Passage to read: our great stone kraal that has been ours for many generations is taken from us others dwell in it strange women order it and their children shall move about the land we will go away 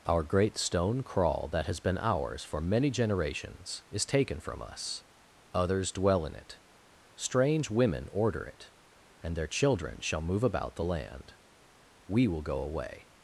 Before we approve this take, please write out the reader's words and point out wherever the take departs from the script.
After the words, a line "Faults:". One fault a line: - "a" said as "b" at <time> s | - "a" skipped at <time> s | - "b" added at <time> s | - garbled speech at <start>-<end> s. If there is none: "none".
our great stone kraal that has been ours for many generations is taken from us others dwell in it strange women order it and their children shall move about the land we will go away
Faults:
none